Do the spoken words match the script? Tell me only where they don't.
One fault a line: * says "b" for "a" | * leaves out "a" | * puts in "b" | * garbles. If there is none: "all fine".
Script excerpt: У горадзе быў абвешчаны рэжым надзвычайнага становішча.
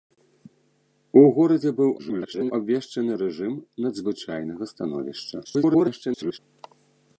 * garbles
* garbles